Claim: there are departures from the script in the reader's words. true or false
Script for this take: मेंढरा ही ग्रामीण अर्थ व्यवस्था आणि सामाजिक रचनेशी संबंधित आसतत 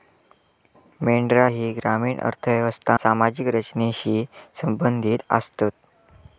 true